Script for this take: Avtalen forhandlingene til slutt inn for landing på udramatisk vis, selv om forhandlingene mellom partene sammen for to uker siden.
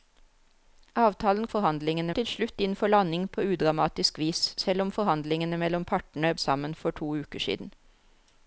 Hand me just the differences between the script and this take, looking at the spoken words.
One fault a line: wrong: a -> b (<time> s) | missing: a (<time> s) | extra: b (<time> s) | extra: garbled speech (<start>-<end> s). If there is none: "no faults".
no faults